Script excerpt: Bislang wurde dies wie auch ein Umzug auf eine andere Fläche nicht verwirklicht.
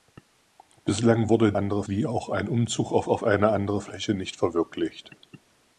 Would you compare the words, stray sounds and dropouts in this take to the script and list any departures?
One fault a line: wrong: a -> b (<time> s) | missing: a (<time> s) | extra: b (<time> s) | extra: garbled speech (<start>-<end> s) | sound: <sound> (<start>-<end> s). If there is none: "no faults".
wrong: dies -> andere (1.5 s)
extra: auf (3.1 s)